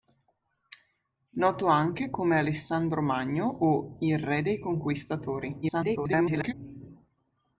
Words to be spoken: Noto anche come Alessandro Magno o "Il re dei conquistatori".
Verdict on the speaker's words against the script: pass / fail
fail